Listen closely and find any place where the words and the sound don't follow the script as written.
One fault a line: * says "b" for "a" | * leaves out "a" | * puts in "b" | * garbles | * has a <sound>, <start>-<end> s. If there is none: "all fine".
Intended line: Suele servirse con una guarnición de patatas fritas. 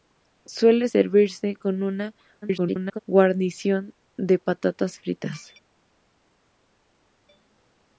* garbles